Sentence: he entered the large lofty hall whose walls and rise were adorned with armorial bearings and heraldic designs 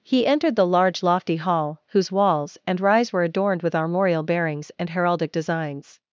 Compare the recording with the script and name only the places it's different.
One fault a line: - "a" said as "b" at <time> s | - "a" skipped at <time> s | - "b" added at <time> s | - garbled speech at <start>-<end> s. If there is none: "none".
none